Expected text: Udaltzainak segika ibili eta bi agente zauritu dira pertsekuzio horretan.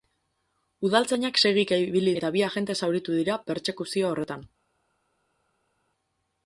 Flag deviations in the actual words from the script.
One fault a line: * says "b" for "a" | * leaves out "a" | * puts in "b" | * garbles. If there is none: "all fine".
all fine